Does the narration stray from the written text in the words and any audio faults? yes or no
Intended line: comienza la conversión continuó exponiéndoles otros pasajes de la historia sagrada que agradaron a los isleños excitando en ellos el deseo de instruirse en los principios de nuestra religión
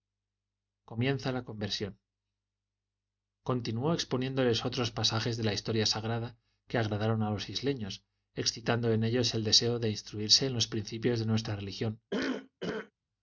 yes